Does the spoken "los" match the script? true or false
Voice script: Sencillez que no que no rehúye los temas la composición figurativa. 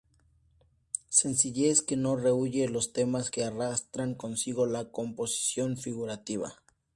true